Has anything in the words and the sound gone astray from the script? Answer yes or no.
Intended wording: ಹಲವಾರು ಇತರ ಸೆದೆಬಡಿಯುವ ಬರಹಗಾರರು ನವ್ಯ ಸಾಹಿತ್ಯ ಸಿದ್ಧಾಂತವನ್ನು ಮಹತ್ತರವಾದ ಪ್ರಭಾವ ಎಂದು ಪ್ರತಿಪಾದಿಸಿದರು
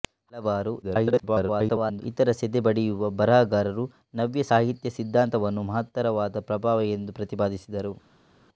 yes